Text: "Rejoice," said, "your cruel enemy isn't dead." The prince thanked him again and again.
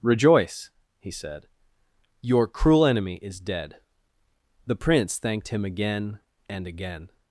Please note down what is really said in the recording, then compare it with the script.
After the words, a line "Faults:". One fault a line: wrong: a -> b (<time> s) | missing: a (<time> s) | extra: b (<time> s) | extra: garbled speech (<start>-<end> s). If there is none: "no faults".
"Rejoice," he said, "your cruel enemy is dead." The prince thanked him again and again.
Faults:
extra: he (1.0 s)
wrong: isn't -> is (3.2 s)